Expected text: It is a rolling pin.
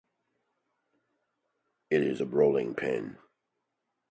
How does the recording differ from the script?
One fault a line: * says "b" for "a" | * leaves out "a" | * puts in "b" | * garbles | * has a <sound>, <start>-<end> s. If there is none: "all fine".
all fine